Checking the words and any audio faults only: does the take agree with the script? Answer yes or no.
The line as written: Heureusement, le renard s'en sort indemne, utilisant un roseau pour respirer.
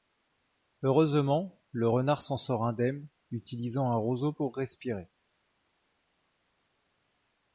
yes